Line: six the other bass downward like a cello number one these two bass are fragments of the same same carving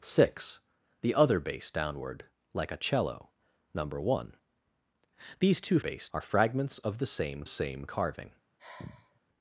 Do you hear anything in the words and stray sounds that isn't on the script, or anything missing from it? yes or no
yes